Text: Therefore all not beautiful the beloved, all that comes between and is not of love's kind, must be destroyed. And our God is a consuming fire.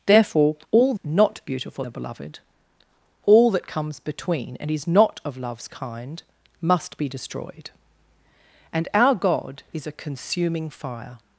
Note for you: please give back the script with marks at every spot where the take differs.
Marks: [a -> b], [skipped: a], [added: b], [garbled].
Therefore all not beautiful the beloved, all that comes between and is not of love's kind, must be destroyed. And our God is a consuming fire.